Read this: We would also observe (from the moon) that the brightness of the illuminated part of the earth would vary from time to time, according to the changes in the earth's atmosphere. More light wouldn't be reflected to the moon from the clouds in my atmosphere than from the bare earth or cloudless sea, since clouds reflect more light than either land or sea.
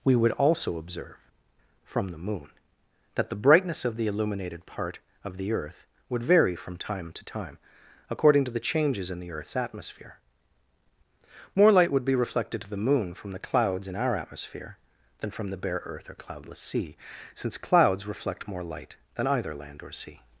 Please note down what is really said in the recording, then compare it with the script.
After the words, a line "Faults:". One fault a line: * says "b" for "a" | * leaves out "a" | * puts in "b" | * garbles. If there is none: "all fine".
We would also observe (from the moon) that the brightness of the illuminated part of the earth would vary from time to time, according to the changes in the earth's atmosphere. More light would be reflected to the moon from the clouds in our atmosphere than from the bare earth or cloudless sea, since clouds reflect more light than either land or sea.
Faults:
* says "would" for "wouldn't"
* says "our" for "my"